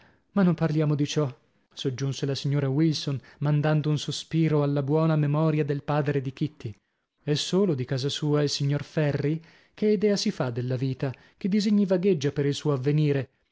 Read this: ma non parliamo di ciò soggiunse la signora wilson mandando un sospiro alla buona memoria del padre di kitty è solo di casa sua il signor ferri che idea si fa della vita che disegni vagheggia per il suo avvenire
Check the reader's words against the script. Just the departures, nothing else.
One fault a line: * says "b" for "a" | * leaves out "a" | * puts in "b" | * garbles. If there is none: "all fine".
all fine